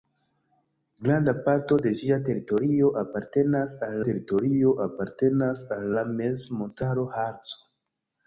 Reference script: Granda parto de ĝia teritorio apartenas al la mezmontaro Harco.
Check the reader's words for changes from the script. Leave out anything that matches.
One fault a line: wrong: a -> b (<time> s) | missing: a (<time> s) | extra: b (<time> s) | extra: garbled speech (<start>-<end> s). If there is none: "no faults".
extra: teritorio apartenas al (4.1 s)